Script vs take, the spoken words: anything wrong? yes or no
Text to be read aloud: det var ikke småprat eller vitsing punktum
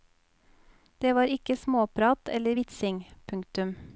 no